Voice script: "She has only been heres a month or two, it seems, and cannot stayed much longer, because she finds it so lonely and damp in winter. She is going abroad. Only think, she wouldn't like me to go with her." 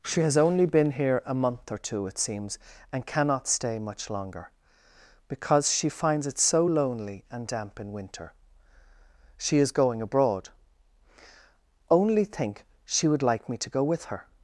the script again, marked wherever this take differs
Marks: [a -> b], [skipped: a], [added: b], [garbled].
"She has only been [heres -> here] a month or two, it seems, and cannot [stayed -> stay] much longer, because she finds it so lonely and damp in winter. She is going abroad. Only think, she [wouldn't -> would] like me to go with her."